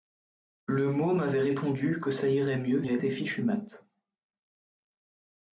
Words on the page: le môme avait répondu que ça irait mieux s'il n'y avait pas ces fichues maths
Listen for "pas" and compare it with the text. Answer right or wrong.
wrong